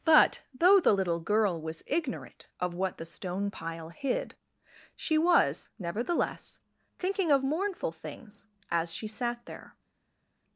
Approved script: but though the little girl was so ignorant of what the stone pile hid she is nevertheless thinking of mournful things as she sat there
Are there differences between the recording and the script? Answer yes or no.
yes